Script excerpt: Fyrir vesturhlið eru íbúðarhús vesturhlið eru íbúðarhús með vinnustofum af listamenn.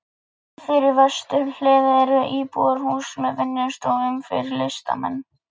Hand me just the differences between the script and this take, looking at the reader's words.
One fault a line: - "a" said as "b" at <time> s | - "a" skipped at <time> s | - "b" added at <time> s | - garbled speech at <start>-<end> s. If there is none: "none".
- "vesturhlið eru íbúðarhús" skipped at 3.1 s
- "af" said as "fyrir" at 4.3 s